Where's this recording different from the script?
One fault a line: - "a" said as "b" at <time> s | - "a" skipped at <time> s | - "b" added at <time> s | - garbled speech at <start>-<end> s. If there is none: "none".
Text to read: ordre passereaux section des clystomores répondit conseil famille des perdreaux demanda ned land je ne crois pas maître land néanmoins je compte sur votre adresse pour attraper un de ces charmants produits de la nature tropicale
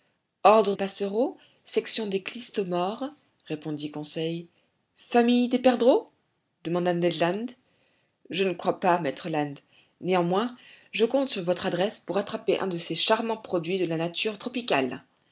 none